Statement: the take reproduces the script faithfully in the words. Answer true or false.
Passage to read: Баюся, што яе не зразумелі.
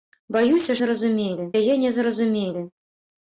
false